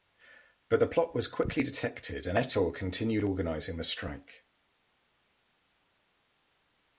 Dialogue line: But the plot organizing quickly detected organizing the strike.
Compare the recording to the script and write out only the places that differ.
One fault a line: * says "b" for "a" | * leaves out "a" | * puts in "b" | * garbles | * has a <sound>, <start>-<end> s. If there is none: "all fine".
* says "was" for "organizing"
* puts in "and Ettor continued"